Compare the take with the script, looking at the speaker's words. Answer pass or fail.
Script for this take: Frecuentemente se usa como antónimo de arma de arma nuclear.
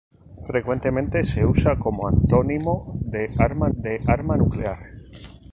pass